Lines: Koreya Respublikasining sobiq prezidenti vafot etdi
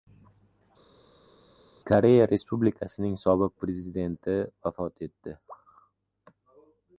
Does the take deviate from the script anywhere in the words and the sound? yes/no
no